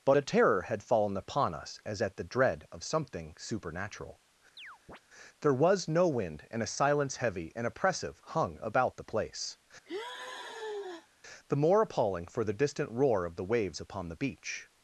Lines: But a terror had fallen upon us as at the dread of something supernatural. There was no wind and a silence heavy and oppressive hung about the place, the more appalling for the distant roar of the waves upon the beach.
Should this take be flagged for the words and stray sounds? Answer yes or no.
yes